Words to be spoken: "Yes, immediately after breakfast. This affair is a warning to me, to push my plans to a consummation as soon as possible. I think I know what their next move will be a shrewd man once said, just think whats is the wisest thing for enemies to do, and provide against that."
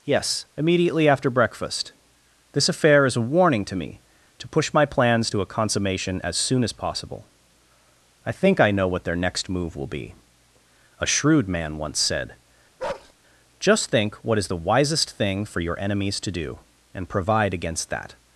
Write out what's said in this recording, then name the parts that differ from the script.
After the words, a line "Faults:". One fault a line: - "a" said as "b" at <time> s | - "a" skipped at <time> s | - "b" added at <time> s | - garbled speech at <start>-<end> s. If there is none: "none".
"Yes, immediately after breakfast. This affair is a warning to me, to push my plans to a consummation as soon as possible. I think I know what their next move will be a shrewd man once said, just think what is the wisest thing for your enemies to do, and provide against that."
Faults:
- "whats" said as "what" at 14.2 s
- "your" added at 15.6 s